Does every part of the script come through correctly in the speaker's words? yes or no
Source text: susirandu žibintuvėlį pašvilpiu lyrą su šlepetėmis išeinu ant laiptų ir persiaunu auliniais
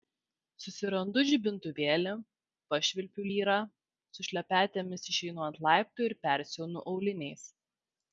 yes